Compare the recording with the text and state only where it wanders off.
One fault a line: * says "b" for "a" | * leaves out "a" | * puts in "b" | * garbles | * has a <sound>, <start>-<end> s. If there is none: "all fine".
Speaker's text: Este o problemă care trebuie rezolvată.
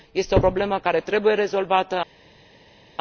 all fine